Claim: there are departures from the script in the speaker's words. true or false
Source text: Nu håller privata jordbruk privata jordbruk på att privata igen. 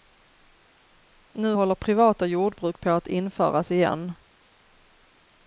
true